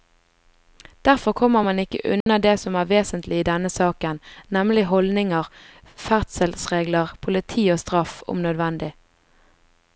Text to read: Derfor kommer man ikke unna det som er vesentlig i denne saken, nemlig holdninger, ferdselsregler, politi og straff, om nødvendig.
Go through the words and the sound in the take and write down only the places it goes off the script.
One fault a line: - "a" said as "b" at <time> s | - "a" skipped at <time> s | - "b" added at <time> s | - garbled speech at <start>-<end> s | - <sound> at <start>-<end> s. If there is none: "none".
- dropout at 2.2-2.3 s